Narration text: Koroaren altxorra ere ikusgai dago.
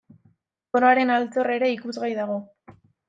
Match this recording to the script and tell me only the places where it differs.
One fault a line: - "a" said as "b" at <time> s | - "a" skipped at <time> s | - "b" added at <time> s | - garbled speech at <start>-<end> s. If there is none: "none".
none